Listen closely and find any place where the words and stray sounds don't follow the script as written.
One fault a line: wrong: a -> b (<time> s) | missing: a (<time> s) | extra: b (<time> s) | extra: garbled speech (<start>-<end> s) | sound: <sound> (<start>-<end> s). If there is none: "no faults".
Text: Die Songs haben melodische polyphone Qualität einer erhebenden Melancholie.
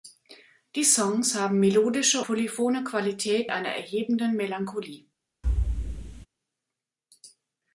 sound: thud (5.4-6.3 s)